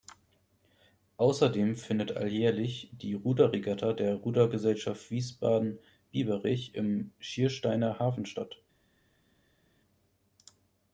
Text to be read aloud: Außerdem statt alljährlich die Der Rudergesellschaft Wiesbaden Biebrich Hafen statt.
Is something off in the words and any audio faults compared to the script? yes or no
yes